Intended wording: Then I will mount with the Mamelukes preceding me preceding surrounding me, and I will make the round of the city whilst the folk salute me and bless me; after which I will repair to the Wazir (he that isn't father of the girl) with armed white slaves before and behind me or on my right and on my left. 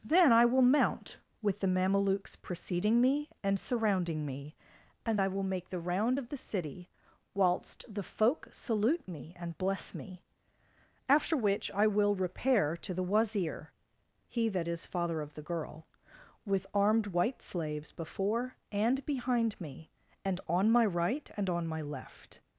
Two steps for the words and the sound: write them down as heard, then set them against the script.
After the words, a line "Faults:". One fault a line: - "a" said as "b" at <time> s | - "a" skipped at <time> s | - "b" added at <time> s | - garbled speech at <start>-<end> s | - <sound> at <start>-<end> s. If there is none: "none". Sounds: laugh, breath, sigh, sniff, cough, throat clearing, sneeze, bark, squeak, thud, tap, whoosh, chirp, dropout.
Then I will mount with the Mamelukes preceding me and surrounding me, and I will make the round of the city whilst the folk salute me and bless me; after which I will repair to the Wazir (he that is father of the girl) with armed white slaves before and behind me and on my right and on my left.
Faults:
- "preceding" said as "and" at 3.4 s
- "isn't" said as "is" at 14.7 s
- "or" said as "and" at 20.2 s